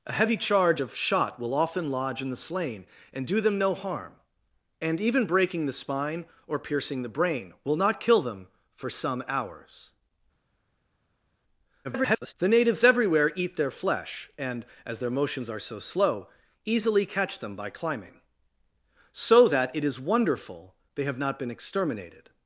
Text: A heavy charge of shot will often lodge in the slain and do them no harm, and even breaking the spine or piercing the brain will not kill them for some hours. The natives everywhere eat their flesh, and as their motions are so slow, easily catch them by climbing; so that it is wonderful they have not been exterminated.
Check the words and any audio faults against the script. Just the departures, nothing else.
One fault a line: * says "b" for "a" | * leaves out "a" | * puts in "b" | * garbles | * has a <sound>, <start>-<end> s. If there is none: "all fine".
* garbles